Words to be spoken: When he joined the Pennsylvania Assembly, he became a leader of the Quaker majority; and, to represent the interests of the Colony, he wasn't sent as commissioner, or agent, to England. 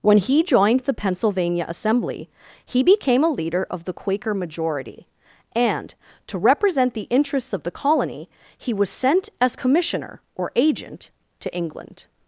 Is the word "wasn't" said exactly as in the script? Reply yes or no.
no